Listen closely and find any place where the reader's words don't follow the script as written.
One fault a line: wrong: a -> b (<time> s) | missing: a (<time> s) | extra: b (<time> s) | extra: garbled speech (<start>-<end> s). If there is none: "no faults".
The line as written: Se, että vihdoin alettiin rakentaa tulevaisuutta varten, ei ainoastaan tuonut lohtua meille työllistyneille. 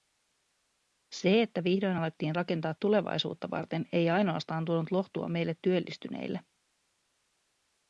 no faults